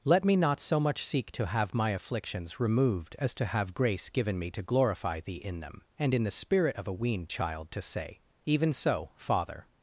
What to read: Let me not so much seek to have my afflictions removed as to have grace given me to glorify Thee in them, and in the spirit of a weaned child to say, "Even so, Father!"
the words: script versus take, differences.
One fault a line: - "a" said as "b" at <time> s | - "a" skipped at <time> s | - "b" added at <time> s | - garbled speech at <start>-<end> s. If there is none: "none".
none